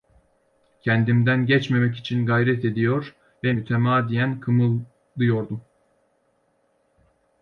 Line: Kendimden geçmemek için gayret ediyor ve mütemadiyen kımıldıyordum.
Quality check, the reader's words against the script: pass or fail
pass